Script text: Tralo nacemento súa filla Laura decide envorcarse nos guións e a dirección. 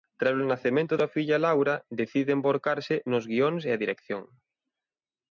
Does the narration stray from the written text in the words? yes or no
no